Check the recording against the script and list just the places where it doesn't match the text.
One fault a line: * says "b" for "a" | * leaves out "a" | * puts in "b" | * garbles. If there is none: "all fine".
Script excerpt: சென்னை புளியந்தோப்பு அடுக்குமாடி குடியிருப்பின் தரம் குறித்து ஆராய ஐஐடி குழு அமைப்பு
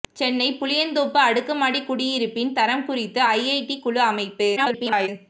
* leaves out "ஆராய"
* garbles